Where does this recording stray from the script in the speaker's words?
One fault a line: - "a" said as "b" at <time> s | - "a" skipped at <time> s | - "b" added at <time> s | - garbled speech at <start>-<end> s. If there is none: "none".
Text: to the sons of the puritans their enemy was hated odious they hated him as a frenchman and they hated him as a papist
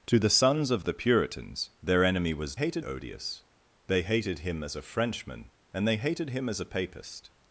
none